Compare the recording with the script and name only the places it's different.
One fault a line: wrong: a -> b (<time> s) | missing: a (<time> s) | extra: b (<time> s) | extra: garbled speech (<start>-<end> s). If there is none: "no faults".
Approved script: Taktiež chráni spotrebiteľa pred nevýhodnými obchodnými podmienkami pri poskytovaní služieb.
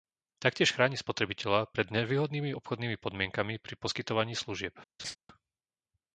no faults